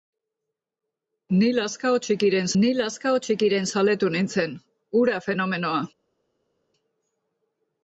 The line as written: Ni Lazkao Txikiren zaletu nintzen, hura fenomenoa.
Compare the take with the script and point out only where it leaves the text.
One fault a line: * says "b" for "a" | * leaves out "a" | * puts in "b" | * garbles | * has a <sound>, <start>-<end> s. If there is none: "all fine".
* puts in "ni Lazkao Txikiren"